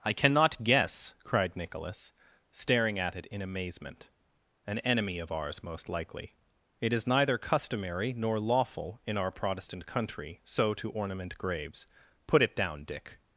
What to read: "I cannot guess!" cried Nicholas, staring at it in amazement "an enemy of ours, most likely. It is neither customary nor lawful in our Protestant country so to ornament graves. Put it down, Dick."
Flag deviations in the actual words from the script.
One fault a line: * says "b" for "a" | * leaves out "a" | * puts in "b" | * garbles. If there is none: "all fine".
all fine